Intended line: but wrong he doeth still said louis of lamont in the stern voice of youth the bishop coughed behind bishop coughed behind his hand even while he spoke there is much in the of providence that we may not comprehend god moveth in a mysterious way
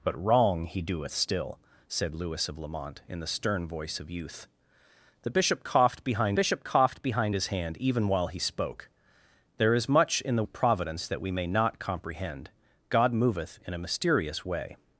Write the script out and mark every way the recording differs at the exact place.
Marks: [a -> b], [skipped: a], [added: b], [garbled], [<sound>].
but wrong he doeth still said louis of lamont in the stern voice of youth the bishop coughed behind bishop coughed behind his hand even while he spoke there is much in the of providence that we may not comprehend god moveth in a mysterious way